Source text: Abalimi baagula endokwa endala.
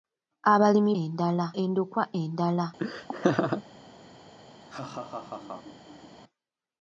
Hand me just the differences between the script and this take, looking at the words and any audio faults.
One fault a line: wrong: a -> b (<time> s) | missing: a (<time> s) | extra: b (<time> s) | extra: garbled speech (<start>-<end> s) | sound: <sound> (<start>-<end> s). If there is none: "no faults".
wrong: baagula -> endala (1.0 s)
sound: laugh (2.8-3.6 s)
sound: laugh (4.6-6.2 s)